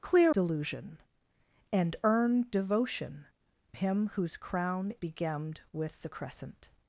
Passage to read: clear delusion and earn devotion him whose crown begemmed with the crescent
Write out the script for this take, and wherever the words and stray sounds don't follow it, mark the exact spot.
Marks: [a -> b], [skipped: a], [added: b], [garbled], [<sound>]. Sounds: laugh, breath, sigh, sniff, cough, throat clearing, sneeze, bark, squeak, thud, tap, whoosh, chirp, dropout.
clear delusion and earn devotion him whose crown begemmed with the crescent